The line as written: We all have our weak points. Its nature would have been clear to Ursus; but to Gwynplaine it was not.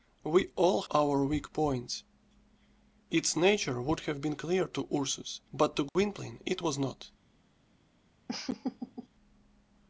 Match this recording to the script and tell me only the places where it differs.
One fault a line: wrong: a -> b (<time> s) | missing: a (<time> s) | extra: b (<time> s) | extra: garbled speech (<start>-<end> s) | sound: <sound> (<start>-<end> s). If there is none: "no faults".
missing: have (0.8 s)
sound: dropout (5.9-6.0 s)
sound: laugh (8.3-9.1 s)